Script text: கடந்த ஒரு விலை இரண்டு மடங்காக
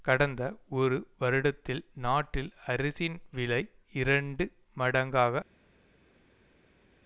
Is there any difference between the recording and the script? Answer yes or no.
yes